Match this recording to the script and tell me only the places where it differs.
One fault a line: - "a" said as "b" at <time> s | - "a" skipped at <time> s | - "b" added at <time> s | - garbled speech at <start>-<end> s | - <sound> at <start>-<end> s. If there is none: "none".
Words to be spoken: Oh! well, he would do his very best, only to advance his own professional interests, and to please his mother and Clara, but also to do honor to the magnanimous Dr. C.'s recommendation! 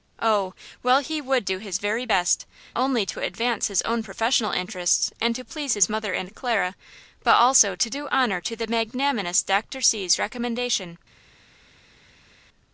none